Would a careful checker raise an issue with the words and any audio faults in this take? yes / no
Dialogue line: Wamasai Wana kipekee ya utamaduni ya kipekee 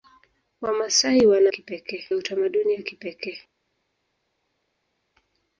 no